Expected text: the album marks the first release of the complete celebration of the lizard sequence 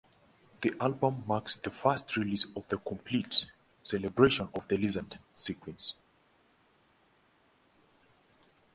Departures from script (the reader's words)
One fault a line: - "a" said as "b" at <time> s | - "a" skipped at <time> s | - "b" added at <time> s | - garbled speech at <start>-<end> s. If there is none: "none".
none